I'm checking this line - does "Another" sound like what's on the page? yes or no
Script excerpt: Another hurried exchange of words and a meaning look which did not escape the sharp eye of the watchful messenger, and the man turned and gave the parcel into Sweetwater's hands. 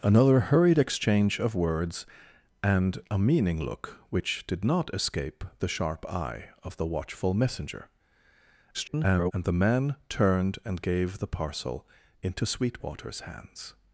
yes